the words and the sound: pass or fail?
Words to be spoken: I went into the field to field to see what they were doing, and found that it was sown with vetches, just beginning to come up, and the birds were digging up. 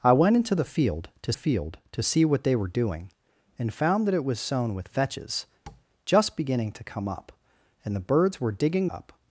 fail